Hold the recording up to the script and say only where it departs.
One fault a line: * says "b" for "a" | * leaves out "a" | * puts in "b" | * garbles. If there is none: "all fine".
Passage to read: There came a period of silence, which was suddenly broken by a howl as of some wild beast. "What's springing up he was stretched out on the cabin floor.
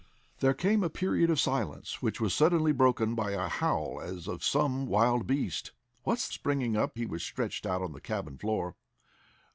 all fine